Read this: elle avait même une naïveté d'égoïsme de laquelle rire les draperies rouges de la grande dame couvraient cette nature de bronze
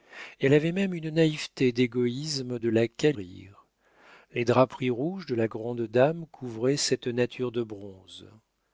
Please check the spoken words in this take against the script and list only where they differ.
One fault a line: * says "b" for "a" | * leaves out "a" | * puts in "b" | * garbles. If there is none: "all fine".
all fine